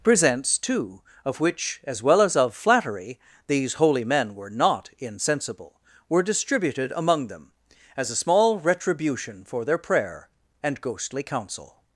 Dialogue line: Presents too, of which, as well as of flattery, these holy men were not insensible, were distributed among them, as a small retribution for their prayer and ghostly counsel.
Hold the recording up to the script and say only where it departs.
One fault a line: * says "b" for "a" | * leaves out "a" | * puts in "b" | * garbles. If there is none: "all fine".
all fine